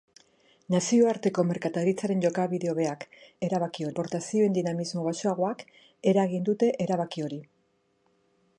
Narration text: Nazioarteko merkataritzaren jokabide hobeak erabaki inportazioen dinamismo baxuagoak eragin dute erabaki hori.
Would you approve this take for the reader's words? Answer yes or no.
yes